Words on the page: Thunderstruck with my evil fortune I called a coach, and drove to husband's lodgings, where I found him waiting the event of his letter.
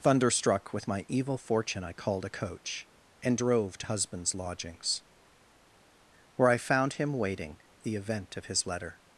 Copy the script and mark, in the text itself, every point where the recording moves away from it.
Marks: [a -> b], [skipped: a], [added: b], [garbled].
Thunderstruck with my evil fortune I called a coach, and drove to husband's lodgings, where I found him waiting the event of his letter.